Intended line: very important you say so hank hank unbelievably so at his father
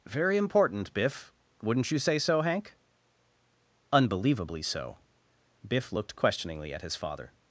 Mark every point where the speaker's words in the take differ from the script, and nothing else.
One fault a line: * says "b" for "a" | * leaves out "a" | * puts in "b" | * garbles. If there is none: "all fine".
* puts in "biff wouldn't"
* leaves out "hank"
* puts in "biff looked questioningly"